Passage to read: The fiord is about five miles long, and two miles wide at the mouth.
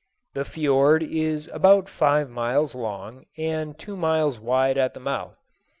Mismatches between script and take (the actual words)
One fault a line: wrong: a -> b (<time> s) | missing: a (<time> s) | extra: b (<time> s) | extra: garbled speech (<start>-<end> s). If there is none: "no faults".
no faults